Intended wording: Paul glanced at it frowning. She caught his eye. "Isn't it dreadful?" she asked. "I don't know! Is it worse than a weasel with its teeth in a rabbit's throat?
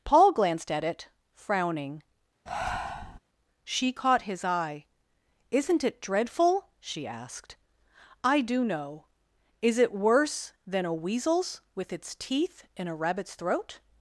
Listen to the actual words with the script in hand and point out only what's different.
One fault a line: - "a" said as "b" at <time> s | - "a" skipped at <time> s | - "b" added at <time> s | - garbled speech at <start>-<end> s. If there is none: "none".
- "don't" said as "do" at 8.4 s
- "weasel" said as "weasels" at 10.9 s